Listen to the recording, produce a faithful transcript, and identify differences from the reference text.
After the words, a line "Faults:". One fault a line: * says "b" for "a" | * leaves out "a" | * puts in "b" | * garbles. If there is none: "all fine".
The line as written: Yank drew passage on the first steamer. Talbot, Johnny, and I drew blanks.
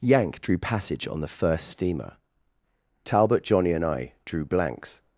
Yank drew passage on the first steamer. Talbot, Johnny, and I drew blanks.
Faults:
all fine